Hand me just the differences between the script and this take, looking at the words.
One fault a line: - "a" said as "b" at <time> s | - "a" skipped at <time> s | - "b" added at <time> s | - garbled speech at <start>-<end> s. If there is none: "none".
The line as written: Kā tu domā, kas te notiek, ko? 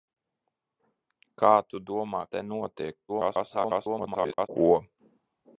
- "kas" skipped at 2.2 s
- garbled speech at 3.1-4.5 s